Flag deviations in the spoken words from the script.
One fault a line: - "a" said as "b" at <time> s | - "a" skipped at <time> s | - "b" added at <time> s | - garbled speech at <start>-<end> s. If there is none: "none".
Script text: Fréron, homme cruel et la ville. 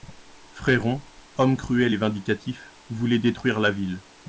- "vindicatif voulait détruire" added at 2.0 s